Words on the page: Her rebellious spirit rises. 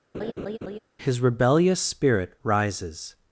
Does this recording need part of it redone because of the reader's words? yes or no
yes